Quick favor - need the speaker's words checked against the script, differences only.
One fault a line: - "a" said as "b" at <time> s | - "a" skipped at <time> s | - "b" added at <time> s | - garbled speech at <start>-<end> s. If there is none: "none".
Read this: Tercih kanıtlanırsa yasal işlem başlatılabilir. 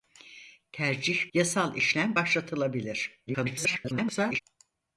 - "kanıtlanırsa" skipped at 1.3 s
- garbled speech at 3.3-4.4 s